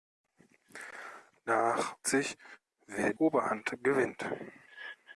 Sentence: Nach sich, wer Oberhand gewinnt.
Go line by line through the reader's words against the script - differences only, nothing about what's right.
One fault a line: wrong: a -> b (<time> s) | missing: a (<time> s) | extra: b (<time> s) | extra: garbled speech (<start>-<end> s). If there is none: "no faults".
no faults